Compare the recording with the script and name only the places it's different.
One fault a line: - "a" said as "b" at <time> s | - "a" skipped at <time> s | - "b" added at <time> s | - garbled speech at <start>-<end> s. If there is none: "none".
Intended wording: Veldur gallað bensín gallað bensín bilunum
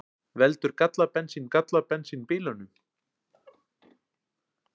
none